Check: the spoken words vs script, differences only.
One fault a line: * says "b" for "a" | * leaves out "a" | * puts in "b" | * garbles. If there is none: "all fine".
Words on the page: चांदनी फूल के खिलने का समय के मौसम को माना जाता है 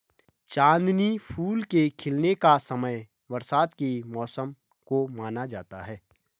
* puts in "बरसात"